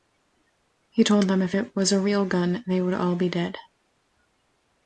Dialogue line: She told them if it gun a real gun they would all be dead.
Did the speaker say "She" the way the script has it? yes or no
no